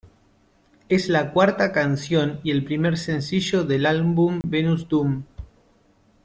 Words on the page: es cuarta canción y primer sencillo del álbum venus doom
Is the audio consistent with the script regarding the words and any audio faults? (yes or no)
no